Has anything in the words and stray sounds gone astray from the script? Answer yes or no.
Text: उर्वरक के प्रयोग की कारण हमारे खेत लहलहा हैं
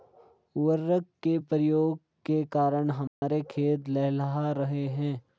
yes